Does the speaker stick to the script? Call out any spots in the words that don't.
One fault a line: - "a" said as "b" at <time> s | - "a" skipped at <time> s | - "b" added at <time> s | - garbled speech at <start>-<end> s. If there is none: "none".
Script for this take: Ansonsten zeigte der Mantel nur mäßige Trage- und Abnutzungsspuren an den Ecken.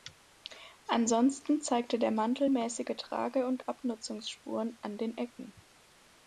- "nur" skipped at 2.5 s